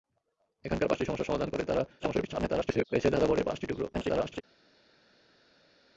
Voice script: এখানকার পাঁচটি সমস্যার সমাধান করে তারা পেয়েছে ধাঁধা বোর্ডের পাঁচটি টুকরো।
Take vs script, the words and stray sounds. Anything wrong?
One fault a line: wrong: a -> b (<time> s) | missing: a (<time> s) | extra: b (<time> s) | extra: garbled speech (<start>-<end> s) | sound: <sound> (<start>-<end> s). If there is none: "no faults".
extra: garbled speech (2.0-2.9 s)
extra: garbled speech (3.9-4.4 s)